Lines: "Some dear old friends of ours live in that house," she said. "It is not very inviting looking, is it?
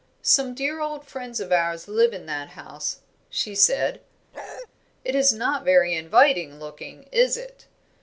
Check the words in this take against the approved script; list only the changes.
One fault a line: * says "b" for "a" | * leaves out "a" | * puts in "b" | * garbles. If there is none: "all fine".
all fine